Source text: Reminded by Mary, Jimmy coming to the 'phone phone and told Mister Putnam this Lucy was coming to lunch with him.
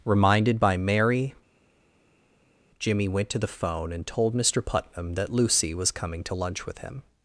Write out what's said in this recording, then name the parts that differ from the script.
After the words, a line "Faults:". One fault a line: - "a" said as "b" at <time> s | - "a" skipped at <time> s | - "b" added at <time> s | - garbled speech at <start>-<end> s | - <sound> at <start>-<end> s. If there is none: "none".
Reminded by Mary, Jimmy went to the 'phone and told Mister Putnam that Lucy was coming to lunch with him.
Faults:
- "coming" said as "went" at 3.1 s
- "phone" skipped at 3.9 s
- "this" said as "that" at 5.1 s